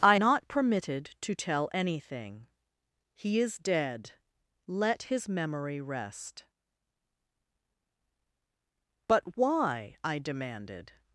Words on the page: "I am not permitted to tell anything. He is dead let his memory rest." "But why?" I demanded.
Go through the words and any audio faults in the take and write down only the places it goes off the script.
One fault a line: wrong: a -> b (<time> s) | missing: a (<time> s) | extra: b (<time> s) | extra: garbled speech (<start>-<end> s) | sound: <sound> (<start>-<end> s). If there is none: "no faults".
missing: am (0.1 s)